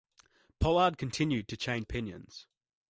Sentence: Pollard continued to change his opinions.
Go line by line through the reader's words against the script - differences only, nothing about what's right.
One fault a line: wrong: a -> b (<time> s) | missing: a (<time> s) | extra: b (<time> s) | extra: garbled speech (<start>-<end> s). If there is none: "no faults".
missing: his (1.9 s)